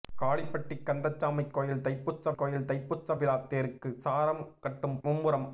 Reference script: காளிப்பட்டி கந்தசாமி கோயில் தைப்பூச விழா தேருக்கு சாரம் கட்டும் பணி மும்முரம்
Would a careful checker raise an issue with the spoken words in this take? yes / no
yes